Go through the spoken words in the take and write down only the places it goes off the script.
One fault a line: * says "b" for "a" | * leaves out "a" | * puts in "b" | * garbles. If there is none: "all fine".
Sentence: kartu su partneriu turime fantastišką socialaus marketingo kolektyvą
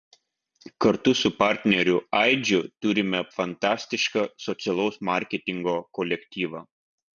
* puts in "aidžiu"